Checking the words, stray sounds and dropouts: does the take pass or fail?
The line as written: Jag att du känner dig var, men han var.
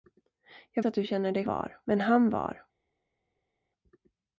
pass